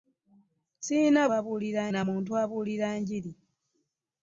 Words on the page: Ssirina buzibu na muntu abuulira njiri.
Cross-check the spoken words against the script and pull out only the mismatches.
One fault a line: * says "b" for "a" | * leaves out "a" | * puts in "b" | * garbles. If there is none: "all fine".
* says "abuulira" for "buzibu"